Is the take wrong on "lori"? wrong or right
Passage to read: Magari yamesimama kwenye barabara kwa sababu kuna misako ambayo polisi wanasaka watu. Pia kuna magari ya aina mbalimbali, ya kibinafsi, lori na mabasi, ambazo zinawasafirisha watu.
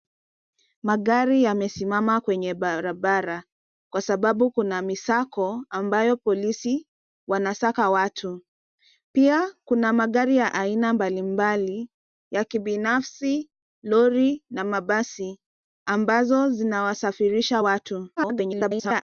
right